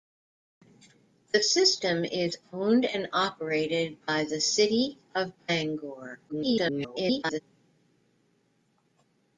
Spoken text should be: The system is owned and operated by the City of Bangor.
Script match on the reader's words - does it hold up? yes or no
no